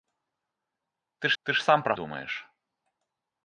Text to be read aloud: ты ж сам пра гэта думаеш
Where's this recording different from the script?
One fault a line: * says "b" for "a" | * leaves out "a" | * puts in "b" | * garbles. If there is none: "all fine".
* puts in "ты"
* leaves out "гэта"